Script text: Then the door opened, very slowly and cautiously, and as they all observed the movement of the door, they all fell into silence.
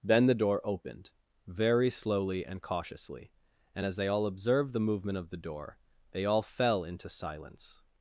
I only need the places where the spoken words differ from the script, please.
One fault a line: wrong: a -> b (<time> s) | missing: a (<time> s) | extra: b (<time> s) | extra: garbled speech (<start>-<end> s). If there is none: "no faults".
no faults